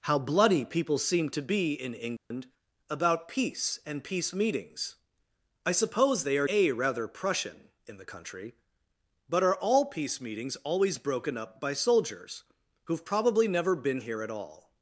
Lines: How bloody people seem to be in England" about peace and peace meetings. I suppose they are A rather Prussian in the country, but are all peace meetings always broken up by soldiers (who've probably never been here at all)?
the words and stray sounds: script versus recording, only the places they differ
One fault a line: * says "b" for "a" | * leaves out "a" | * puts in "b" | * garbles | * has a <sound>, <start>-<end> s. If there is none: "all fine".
* has a dropout, 2.2-2.3 s